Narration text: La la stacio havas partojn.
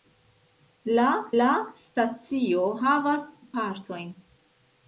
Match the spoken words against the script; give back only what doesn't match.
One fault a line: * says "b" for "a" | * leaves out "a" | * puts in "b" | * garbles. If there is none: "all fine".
all fine